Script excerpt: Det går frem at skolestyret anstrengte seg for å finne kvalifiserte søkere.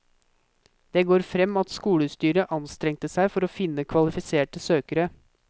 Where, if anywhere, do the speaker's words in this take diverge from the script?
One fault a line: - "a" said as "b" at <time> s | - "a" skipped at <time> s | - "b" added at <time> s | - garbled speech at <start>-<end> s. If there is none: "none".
none